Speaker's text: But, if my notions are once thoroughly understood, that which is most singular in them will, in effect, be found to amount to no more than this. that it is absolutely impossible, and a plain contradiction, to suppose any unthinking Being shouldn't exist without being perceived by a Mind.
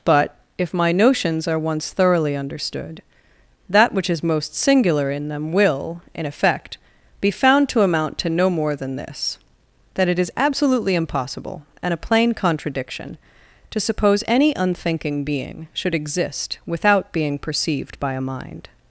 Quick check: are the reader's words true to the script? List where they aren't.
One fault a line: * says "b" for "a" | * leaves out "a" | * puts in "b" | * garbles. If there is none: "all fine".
* says "should" for "shouldn't"